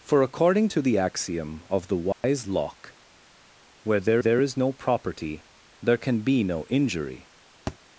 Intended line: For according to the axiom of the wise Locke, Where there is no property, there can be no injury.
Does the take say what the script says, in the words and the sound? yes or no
no